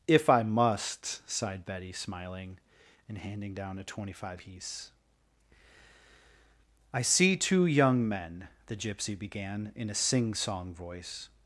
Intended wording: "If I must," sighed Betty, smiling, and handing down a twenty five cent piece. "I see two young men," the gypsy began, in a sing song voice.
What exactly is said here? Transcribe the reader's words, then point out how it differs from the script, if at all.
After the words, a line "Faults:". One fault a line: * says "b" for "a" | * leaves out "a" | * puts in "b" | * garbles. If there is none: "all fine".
"If I must," sighed Betty, smiling, and handing down a twenty five piece. "I see two young men," the gypsy began, in a sing song voice.
Faults:
* leaves out "cent"